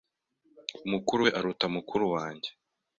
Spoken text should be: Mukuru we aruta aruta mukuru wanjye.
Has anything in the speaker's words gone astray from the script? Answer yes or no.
yes